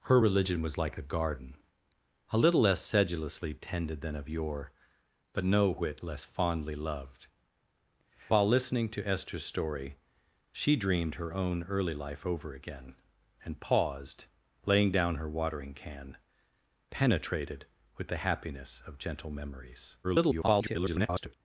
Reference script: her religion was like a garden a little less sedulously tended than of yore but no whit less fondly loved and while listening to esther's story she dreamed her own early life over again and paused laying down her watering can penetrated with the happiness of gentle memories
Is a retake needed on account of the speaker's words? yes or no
yes